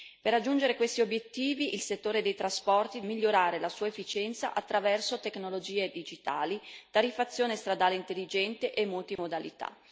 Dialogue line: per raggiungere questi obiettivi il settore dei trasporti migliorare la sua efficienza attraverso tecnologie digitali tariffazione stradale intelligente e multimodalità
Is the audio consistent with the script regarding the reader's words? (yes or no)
yes